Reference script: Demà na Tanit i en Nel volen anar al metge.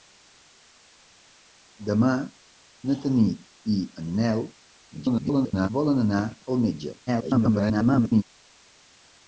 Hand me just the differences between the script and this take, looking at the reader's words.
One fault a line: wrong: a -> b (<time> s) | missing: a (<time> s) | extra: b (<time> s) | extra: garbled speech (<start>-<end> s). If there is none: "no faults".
extra: garbled speech (4.9-5.7 s)
extra: garbled speech (7.1-8.2 s)